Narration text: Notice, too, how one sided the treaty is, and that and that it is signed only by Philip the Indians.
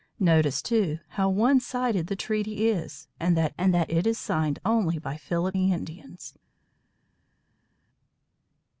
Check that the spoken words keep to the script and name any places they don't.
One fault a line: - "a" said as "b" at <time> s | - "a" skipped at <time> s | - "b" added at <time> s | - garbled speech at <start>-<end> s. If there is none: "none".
none